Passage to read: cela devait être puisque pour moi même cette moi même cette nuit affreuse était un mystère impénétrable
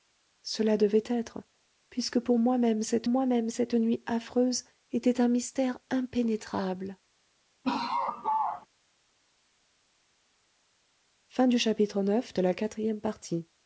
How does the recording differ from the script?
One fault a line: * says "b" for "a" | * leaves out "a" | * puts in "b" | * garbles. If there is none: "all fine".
all fine